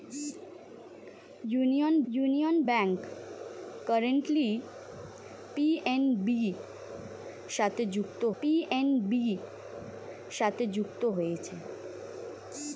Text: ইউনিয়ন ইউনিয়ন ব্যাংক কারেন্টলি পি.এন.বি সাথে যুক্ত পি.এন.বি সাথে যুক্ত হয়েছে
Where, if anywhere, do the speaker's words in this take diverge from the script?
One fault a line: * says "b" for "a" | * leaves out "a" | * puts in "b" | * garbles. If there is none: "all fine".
all fine